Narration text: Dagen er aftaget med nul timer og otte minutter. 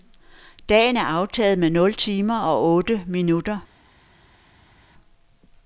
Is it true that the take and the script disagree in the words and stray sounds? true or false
false